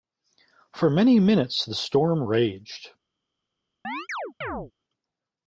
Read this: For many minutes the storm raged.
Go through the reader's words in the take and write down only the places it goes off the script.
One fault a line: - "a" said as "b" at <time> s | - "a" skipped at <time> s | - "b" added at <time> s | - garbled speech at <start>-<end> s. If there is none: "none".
none